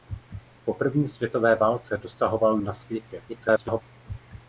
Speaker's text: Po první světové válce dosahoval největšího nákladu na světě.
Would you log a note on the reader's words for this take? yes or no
yes